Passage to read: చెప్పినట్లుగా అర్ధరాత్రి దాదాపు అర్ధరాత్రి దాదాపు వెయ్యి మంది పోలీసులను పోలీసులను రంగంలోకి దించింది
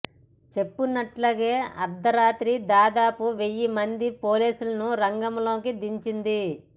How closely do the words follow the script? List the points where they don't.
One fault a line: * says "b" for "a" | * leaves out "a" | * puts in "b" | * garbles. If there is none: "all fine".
* leaves out "అర్ధరాత్రి దాదాపు"
* leaves out "పోలీసులను"